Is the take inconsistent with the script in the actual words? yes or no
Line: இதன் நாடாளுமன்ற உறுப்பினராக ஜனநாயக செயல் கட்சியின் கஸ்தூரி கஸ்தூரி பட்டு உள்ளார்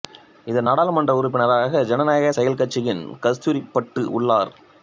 yes